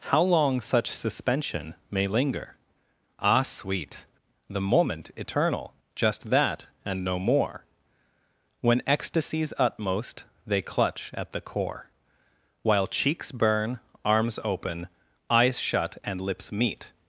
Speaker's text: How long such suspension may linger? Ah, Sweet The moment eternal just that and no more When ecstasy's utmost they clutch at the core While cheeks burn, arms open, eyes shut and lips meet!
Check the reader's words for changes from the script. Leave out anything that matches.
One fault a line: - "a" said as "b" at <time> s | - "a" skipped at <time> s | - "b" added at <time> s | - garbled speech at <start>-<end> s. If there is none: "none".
none